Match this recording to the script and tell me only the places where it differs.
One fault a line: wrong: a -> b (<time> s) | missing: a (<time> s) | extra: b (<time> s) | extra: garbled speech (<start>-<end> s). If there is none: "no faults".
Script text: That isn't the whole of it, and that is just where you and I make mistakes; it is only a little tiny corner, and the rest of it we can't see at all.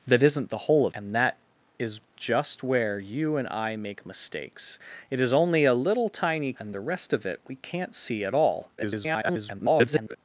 missing: it (0.9 s)
missing: corner (6.5 s)
extra: garbled speech (8.8-10.2 s)